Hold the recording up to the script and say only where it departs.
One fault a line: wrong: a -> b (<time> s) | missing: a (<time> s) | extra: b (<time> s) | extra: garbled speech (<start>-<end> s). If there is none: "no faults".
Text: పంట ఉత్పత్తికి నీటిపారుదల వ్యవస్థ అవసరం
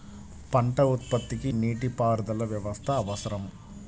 no faults